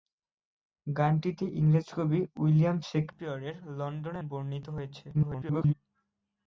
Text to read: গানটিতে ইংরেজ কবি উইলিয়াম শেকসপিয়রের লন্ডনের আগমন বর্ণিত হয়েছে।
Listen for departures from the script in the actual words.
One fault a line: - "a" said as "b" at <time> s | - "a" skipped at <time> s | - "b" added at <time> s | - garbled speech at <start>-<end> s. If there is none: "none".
- "আগমন" skipped at 4.2 s
- garbled speech at 5.1-5.7 s